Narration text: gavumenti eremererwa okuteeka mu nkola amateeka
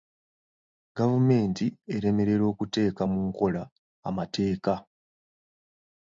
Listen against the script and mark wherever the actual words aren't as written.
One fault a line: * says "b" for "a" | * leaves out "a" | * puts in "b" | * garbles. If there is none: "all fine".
all fine